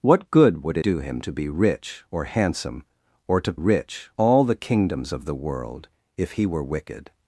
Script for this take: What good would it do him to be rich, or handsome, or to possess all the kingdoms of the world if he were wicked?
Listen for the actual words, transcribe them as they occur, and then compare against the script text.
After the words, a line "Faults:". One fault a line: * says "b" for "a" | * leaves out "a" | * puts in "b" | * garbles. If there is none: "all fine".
What good would do him to be rich, or handsome, or to rich all the kingdoms of the world if he were wicked?
Faults:
* leaves out "it"
* says "rich" for "possess"